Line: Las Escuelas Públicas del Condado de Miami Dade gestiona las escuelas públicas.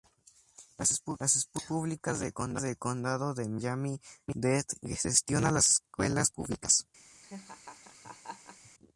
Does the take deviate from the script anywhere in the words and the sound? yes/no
yes